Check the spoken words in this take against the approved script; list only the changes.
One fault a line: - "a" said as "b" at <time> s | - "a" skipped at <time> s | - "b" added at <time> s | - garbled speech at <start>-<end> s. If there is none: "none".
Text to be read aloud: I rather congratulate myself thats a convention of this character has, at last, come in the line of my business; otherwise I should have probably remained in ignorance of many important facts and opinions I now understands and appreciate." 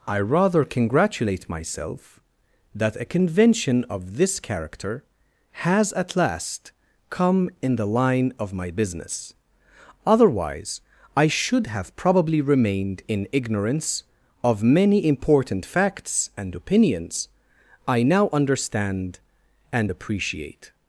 - "thats" said as "that" at 2.7 s
- "understands" said as "understand" at 18.3 s